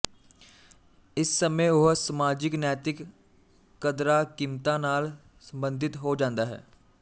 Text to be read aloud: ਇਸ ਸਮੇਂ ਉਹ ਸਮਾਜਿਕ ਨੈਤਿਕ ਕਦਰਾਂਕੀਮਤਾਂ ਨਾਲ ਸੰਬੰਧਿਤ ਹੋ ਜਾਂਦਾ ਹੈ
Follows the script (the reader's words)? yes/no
yes